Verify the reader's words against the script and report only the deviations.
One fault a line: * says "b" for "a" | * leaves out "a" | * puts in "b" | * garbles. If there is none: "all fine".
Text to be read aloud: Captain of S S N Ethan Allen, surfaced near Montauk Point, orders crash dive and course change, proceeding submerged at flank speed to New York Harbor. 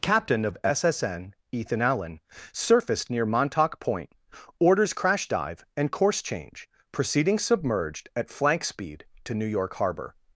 all fine